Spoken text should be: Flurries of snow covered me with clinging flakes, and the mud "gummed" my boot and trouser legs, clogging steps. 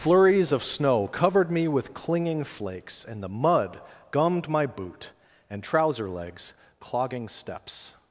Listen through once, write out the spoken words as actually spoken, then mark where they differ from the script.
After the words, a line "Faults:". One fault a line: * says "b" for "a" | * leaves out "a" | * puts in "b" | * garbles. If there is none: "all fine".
Flurries of snow covered me with clinging flakes, and the mud "gummed" my boot and trouser legs, clogging steps.
Faults:
all fine